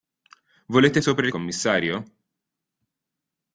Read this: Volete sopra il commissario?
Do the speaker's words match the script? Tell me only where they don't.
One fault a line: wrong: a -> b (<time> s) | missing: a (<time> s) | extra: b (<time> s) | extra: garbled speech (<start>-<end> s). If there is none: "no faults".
no faults